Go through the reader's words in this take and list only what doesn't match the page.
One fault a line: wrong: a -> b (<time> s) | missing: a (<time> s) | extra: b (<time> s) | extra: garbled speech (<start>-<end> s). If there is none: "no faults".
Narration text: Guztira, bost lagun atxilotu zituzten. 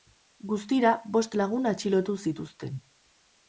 no faults